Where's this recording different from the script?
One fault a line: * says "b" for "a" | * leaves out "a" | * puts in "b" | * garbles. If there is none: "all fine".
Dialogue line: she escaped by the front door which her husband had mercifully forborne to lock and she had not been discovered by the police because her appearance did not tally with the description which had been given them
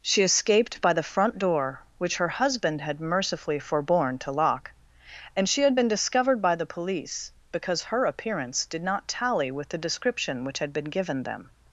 * leaves out "not"